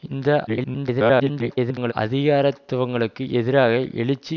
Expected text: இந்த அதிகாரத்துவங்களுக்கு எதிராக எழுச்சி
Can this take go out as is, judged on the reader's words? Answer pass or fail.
fail